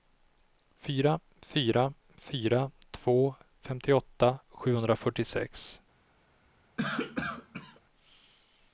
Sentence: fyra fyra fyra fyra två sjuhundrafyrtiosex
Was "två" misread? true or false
true